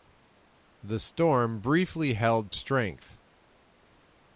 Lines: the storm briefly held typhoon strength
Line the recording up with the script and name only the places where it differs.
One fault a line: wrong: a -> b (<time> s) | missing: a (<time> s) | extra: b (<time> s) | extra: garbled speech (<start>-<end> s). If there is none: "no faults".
missing: typhoon (2.5 s)